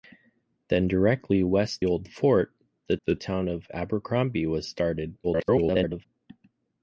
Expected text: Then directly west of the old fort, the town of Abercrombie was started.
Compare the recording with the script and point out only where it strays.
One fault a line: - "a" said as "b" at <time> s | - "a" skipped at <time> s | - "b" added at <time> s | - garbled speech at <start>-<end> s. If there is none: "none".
- "of the" skipped at 1.9 s
- "the" added at 3.0 s
- garbled speech at 5.2-6.1 s